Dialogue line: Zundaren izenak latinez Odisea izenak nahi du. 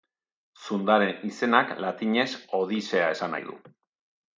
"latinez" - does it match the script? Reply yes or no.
yes